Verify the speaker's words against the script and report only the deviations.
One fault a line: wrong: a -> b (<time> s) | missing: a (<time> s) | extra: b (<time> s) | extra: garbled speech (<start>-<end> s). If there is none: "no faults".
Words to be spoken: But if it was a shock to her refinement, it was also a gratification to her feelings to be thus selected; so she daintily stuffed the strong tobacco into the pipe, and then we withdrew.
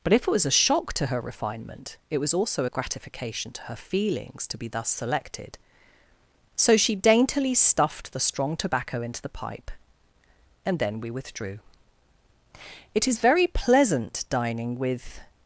extra: It is very pleasant dining with (12.9 s)